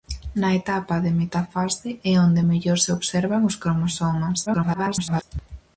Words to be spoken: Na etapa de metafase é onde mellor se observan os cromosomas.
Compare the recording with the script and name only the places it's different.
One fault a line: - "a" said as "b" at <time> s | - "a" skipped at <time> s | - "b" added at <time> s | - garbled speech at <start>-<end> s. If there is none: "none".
- garbled speech at 4.5-5.2 s